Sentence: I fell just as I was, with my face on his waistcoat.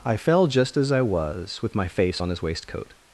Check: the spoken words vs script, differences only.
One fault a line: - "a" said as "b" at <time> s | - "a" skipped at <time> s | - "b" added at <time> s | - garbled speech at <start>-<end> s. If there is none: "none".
none